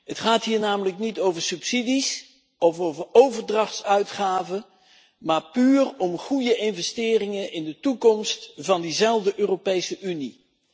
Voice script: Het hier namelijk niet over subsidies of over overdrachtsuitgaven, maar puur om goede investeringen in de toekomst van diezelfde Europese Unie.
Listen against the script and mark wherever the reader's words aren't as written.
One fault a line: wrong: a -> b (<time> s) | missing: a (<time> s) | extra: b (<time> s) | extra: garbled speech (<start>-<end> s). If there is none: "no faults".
extra: gaat (0.2 s)